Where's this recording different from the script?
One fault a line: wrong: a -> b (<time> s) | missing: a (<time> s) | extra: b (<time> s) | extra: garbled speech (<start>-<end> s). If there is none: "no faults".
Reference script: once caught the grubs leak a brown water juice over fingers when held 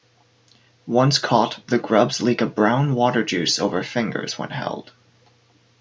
no faults